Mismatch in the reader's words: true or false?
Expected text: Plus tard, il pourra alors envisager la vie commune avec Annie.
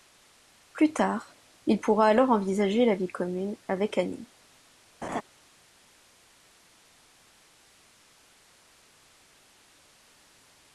false